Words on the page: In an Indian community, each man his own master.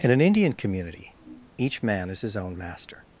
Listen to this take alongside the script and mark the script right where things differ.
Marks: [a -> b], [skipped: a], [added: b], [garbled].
In an Indian community, each man [added: is] his own master.